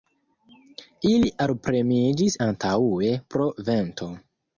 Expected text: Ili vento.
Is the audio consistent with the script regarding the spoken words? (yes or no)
no